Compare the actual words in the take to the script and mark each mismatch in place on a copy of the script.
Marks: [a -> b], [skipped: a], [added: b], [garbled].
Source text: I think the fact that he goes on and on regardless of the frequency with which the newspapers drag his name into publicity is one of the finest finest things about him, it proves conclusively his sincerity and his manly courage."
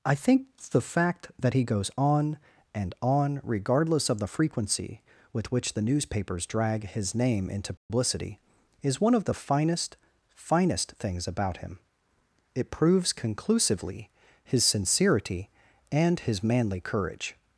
I think the fact that he goes on and on regardless of the frequency with which the newspapers drag his name into publicity is one of the finest finest things about him, it proves conclusively his sincerity and his manly courage."